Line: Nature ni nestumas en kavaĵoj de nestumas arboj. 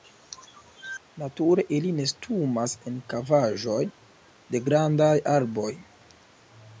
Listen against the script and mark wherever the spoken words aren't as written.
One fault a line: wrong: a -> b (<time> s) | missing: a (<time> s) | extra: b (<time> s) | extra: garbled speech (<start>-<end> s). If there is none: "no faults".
wrong: ni -> ili (1.8 s)
wrong: nestumas -> grandaj (4.7 s)